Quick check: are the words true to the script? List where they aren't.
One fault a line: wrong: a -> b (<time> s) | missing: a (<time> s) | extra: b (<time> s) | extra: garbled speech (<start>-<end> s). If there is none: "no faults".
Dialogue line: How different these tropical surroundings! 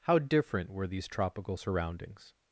extra: were (0.7 s)